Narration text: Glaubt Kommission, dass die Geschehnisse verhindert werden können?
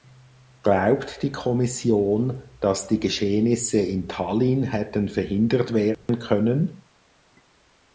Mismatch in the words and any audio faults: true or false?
true